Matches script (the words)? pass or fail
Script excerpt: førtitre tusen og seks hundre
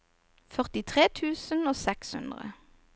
pass